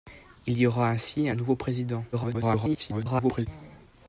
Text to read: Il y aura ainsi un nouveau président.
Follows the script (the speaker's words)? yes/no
no